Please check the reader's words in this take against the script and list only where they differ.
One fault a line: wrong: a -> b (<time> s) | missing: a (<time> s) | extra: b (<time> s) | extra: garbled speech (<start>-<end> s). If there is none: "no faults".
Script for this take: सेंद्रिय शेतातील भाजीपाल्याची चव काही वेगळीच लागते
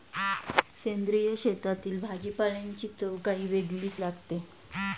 no faults